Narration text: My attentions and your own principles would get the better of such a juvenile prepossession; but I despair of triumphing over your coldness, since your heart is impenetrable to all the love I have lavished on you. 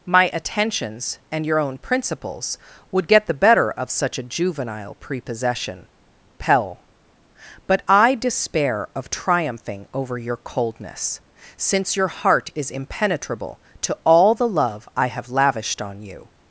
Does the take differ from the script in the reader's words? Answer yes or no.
yes